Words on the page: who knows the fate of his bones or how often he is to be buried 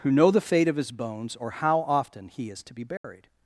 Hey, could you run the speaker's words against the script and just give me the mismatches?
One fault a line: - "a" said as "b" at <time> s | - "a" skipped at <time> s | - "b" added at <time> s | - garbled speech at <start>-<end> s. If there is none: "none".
- "knows" said as "know" at 0.1 s